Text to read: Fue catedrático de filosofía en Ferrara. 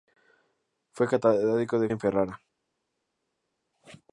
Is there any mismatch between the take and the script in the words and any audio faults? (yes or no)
yes